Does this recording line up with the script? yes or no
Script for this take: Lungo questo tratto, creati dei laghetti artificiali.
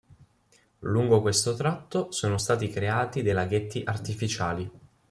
no